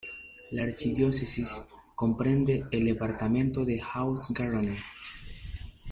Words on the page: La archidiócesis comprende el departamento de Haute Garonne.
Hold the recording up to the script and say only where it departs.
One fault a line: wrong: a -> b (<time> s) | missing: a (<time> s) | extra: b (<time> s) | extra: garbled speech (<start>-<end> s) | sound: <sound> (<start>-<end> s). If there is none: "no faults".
no faults